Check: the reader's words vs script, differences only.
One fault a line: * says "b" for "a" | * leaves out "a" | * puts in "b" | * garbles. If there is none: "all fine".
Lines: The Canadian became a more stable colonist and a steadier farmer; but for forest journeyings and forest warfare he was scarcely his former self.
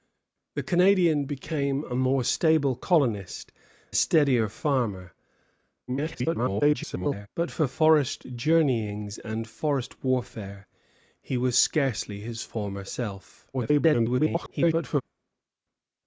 * leaves out "and"
* garbles
* garbles